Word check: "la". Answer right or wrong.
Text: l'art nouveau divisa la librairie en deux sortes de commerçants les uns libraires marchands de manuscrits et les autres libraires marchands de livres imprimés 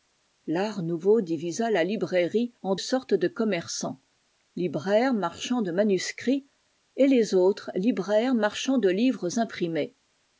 right